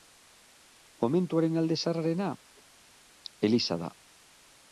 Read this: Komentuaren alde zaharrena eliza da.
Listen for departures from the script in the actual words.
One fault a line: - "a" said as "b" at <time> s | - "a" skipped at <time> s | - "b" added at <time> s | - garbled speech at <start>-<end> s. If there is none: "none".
none